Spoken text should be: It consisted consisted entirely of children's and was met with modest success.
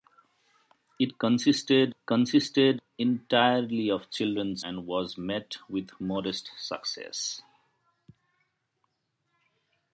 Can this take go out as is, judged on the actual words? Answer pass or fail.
pass